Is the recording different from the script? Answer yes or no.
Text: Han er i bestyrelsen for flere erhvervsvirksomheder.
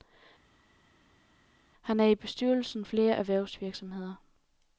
yes